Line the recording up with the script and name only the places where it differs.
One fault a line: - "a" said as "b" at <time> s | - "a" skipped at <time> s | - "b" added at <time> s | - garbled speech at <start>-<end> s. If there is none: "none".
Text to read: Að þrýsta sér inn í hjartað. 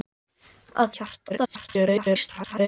- "þrýsta sér inn" skipped at 1.0 s
- garbled speech at 1.3-2.7 s